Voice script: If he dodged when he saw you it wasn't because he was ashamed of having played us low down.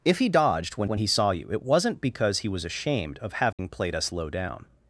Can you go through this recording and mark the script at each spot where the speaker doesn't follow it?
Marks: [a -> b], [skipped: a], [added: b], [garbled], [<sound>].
If he dodged when [added: when] he saw you it wasn't because he was ashamed of having [dropout] played us low down.